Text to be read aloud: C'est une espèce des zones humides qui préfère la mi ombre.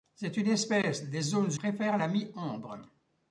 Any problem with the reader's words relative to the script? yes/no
yes